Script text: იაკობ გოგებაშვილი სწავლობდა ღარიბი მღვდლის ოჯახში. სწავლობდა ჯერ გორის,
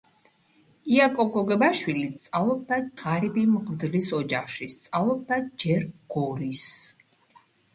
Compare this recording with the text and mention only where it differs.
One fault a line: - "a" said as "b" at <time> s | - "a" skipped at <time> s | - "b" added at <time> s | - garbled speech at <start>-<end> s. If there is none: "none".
none